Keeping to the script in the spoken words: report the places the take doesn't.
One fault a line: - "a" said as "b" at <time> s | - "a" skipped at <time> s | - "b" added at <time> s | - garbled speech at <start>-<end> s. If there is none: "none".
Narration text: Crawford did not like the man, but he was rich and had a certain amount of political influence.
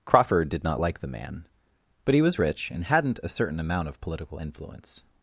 - "had" said as "hadn't" at 2.8 s